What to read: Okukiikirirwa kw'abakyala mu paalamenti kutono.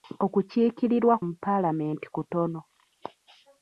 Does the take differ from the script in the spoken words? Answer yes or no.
yes